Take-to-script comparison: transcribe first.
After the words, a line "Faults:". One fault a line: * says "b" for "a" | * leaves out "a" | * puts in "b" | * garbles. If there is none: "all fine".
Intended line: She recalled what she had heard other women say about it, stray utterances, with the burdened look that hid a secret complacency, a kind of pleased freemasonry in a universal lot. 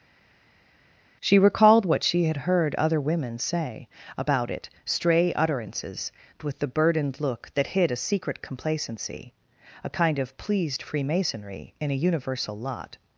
She recalled what she had heard other women say about it, stray utterances, with the burdened look that hid a secret complacency, a kind of pleased freemasonry in a universal lot.
Faults:
all fine